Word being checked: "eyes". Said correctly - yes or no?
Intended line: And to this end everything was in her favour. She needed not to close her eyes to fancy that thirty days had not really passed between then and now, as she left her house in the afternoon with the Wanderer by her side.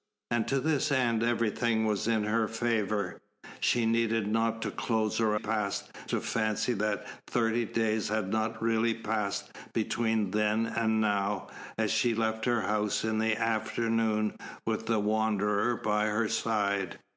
no